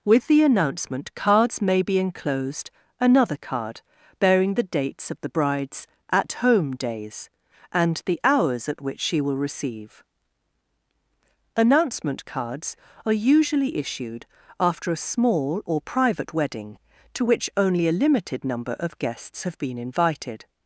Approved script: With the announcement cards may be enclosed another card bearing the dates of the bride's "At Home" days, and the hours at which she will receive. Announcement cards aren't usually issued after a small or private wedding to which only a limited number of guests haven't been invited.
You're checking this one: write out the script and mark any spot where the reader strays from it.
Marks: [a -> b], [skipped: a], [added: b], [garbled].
With the announcement cards may be enclosed another card bearing the dates of the bride's "At Home" days, and the hours at which she will receive. Announcement cards [aren't -> are] usually issued after a small or private wedding to which only a limited number of guests [haven't -> have] been invited.